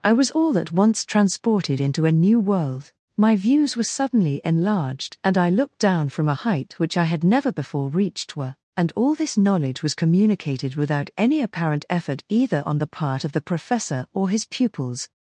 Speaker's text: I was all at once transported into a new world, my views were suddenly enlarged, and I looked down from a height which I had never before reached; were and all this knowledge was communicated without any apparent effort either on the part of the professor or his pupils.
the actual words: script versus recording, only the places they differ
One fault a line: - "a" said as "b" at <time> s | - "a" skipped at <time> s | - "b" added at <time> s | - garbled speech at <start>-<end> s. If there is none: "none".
none